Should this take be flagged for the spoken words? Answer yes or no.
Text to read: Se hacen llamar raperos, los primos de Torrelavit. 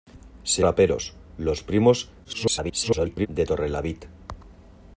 yes